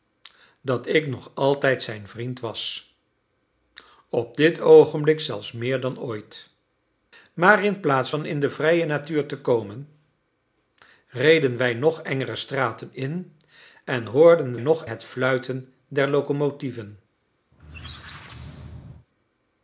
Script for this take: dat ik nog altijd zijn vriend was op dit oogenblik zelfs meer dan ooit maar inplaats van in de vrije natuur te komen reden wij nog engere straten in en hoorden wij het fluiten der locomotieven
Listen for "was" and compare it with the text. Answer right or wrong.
right